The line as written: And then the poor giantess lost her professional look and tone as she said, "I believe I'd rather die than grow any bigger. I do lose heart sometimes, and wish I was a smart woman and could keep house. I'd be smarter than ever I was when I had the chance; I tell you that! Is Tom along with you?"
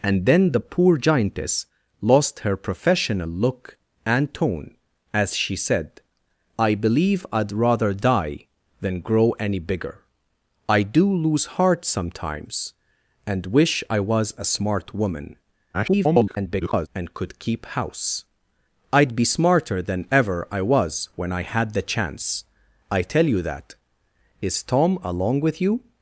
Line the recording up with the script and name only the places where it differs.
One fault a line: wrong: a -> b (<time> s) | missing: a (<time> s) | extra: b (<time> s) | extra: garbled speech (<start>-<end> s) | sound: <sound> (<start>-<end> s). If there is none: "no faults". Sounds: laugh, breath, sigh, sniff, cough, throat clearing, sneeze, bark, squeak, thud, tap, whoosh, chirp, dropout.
extra: garbled speech (15.7-16.9 s)